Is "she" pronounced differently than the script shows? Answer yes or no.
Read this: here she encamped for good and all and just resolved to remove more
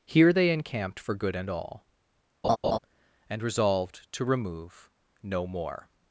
yes